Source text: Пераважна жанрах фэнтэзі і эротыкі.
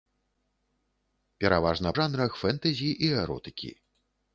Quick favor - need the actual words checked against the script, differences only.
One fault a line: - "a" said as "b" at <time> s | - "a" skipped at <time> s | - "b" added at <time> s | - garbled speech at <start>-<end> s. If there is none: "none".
none